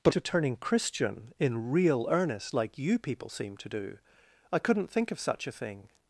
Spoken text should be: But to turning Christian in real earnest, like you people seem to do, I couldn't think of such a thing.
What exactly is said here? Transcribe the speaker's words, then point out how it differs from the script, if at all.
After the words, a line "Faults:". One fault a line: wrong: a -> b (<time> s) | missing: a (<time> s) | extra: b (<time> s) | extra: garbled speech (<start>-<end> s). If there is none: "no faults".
But to turning Christian in real earnest, like you people seem to do, I couldn't think of such a thing.
Faults:
no faults